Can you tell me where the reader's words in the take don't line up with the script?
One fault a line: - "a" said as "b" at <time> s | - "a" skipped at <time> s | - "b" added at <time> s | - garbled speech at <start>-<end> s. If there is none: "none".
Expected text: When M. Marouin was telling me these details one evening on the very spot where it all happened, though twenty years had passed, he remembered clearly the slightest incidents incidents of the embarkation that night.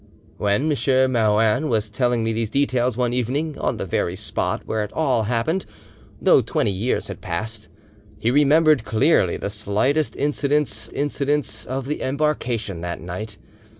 none